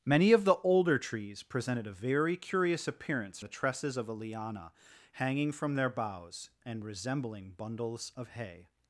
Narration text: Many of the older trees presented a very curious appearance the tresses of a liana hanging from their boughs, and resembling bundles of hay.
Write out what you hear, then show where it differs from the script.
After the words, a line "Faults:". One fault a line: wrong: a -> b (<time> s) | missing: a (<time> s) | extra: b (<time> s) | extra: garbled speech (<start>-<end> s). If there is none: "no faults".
Many of the older trees presented a very curious appearance the tresses of a liana hanging from their boughs, and resembling bundles of hay.
Faults:
no faults